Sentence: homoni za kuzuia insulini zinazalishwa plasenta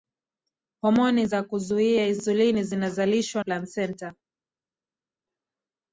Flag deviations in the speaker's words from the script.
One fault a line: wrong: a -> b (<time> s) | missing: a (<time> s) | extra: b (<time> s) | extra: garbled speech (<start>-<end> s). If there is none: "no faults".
no faults